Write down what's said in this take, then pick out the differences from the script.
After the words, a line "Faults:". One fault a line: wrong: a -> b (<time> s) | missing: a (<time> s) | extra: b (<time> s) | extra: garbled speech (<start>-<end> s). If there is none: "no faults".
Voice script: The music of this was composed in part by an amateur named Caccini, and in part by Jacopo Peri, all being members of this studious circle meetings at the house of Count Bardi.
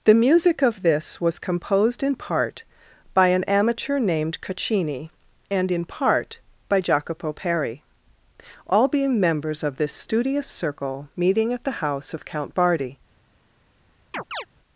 The music of this was composed in part by an amateur named Caccini, and in part by Jacopo Peri, all being members of this studious circle meeting at the house of Count Bardi.
Faults:
wrong: meetings -> meeting (11.2 s)